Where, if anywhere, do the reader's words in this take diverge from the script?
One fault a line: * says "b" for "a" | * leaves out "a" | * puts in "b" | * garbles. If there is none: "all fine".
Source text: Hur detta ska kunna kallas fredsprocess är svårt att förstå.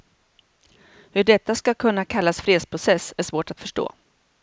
all fine